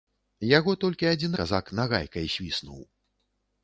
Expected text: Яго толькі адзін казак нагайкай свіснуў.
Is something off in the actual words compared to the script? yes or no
no